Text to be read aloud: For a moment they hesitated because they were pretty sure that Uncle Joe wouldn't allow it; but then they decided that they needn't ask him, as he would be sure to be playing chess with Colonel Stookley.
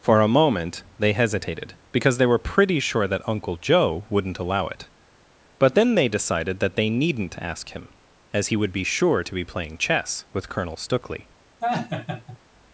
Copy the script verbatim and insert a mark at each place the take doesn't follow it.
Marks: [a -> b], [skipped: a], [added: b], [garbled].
For a moment they hesitated because they were pretty sure that Uncle Joe wouldn't allow it; but then they decided that they needn't ask him, as he would be sure to be playing chess with Colonel Stookley.